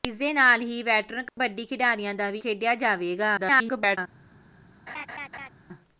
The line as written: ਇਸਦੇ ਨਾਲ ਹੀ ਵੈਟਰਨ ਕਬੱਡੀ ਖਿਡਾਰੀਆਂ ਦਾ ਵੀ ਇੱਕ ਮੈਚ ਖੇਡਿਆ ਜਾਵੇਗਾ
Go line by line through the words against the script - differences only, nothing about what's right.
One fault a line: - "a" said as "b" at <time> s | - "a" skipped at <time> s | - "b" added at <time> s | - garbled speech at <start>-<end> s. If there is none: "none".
- "ਇੱਕ ਮੈਚ" skipped at 2.4 s
- garbled speech at 3.4-4.0 s